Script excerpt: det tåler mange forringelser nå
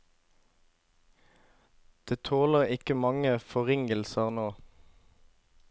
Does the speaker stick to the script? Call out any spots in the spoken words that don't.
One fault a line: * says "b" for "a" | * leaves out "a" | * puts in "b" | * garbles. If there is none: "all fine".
* puts in "ikke"